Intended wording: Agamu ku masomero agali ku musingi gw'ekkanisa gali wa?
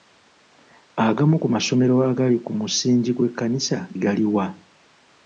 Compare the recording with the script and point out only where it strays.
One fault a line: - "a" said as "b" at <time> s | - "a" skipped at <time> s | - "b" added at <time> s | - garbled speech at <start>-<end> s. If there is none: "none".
none